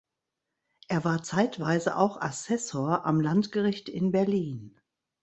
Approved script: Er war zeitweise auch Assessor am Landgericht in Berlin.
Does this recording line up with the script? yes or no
yes